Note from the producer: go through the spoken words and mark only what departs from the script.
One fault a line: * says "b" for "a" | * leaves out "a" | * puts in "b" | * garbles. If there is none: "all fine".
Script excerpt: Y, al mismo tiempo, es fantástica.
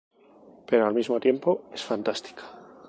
* says "Pero" for "Y"